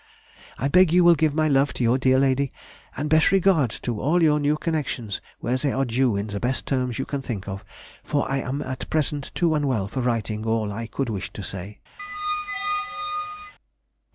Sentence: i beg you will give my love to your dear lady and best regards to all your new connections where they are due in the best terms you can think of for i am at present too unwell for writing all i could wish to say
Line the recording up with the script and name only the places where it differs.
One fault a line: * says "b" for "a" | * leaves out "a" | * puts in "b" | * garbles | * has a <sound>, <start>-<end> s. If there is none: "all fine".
* has a squeak, 12.0-13.5 s